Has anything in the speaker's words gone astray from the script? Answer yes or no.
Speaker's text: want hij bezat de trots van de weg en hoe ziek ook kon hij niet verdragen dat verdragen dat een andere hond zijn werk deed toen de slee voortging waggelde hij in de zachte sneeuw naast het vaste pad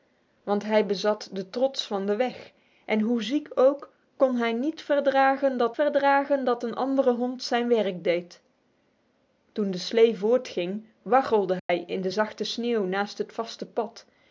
no